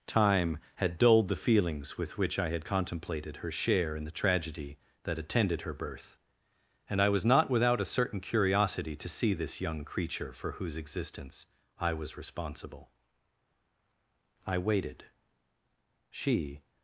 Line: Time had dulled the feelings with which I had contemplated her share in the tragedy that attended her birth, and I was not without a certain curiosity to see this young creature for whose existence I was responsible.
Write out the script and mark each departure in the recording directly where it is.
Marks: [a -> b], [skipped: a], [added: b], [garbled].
Time had dulled the feelings with which I had contemplated her share in the tragedy that attended her birth, and I was not without a certain curiosity to see this young creature for whose existence I was responsible. [added: I waited she]